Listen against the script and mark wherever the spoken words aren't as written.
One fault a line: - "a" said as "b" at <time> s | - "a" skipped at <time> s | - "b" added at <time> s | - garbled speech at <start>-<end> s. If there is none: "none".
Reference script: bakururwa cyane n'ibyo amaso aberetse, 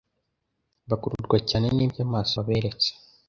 none